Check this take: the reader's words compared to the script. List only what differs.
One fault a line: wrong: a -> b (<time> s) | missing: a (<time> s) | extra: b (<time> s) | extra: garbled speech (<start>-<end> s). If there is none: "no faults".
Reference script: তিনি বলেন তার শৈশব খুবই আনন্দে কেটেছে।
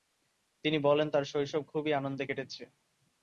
no faults